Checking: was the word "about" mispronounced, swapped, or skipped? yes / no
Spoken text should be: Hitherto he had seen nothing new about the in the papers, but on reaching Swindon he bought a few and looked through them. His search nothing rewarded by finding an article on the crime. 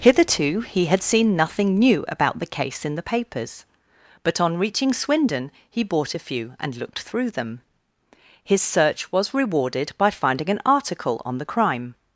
no